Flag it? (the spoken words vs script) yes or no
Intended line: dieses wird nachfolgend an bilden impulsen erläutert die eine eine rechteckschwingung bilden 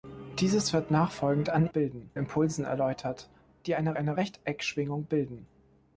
no